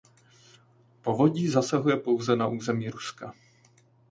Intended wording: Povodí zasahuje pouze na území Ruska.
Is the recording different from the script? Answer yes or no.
no